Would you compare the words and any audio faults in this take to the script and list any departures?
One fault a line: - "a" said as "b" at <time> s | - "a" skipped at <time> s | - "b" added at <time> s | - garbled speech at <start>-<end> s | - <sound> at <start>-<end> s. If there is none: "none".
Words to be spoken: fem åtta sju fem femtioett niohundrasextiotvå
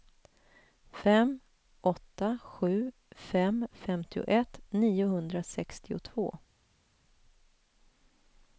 none